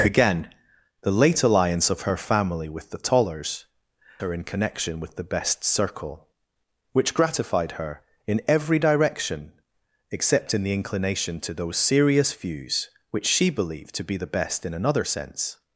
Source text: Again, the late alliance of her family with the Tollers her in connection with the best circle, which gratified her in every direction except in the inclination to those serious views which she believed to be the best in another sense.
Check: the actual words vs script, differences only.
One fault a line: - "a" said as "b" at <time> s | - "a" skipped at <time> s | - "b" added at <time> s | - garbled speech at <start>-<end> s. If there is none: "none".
none